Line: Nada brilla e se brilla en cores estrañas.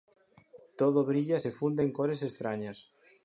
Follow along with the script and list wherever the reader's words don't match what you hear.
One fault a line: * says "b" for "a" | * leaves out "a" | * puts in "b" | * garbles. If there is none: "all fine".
* says "Todo" for "Nada"
* says "funde" for "brilla"